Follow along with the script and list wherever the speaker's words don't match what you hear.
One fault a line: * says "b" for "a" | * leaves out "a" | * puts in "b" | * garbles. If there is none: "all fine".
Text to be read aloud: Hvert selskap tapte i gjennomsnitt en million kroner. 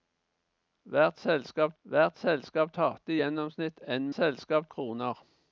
* puts in "hvert selskap"
* says "selskap" for "million"